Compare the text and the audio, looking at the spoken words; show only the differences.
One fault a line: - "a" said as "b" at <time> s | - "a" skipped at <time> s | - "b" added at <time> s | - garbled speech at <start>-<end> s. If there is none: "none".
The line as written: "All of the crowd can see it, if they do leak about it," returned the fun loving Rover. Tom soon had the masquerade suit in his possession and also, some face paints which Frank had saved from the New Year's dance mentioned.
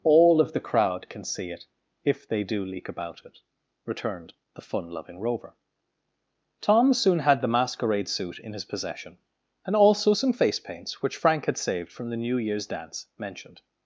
none